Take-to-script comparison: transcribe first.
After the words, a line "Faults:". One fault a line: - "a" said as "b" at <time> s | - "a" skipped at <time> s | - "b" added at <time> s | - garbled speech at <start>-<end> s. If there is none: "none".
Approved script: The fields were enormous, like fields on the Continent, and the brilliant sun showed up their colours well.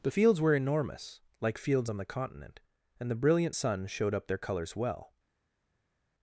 The fields were enormous, like fields on the Continent, and the brilliant sun showed up their colours well.
Faults:
none